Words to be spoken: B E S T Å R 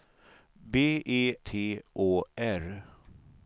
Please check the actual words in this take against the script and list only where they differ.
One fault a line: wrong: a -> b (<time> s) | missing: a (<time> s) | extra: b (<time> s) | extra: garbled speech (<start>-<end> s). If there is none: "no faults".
missing: S (1.4 s)